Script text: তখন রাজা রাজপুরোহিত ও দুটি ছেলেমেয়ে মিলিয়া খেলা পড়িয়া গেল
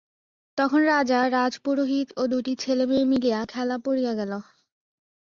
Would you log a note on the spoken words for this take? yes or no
no